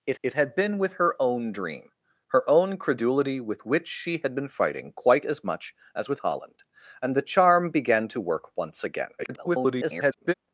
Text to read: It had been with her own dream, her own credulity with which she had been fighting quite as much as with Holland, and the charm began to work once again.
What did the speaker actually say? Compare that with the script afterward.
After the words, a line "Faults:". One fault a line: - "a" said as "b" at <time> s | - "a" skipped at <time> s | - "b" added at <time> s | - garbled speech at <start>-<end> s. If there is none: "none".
It it had been with her own dream, her own credulity with which she had been fighting quite as much as with Holland, and the charm began to work once again. [garbled]
Faults:
- "it" added at 0.2 s
- garbled speech at 9.2-10.3 s